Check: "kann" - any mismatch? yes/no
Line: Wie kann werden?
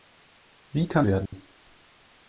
no